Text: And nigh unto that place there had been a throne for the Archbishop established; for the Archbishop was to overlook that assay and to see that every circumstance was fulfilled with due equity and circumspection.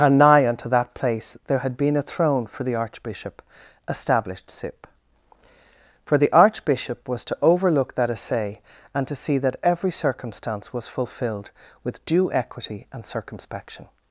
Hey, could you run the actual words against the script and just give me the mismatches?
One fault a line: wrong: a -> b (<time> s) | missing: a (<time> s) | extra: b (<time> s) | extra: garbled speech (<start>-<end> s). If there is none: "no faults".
extra: sip (4.5 s)